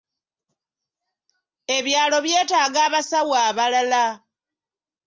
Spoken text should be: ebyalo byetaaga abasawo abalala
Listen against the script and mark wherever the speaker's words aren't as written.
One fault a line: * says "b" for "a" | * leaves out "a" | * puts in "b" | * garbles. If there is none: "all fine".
all fine